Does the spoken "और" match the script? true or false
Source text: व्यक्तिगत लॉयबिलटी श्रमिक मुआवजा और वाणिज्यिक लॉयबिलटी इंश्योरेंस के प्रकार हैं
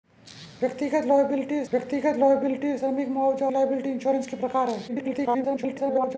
false